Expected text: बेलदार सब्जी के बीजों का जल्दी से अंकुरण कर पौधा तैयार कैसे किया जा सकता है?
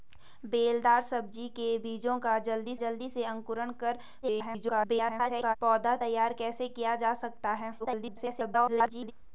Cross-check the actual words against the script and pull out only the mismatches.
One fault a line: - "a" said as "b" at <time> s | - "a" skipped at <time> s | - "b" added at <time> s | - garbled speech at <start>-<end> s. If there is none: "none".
- "जल्दी" added at 2.8 s
- garbled speech at 4.2-5.6 s
- garbled speech at 7.8-9.1 s